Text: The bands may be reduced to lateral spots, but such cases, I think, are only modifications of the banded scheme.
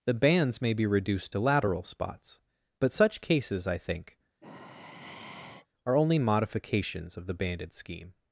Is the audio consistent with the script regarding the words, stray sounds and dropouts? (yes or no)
no